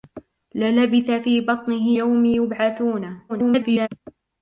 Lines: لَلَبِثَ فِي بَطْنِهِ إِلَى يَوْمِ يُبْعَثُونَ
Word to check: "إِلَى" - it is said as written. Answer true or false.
false